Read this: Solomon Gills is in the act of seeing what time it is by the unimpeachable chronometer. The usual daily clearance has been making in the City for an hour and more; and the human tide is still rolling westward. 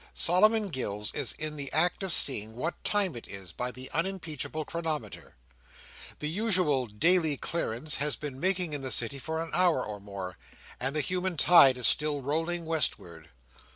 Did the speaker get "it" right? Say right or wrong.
right